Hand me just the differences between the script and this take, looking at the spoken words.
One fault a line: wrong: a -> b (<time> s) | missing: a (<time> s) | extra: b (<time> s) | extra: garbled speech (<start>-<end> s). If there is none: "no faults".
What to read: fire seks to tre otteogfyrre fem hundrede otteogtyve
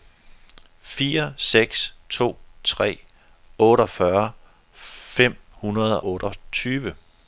no faults